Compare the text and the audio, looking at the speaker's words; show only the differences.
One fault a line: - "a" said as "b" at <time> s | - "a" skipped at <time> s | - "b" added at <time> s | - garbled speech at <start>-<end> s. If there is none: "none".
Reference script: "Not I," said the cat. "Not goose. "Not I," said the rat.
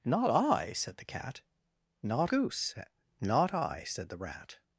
none